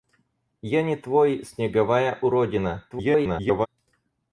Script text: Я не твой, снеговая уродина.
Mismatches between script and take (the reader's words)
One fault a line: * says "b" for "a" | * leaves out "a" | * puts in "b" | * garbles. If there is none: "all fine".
* garbles